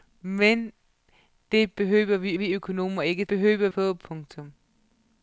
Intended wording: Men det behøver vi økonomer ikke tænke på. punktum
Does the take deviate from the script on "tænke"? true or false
true